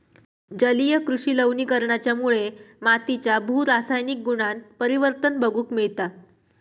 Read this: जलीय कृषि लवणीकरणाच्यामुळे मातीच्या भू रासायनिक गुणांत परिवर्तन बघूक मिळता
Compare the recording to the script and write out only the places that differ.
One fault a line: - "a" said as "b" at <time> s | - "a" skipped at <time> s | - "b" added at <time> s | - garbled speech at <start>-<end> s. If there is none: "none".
none